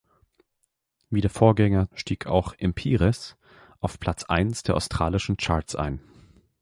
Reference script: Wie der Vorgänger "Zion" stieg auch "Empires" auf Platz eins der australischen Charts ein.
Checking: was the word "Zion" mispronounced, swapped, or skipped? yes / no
yes